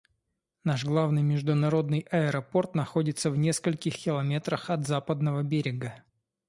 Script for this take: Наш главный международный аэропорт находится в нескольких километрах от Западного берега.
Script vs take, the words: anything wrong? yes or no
no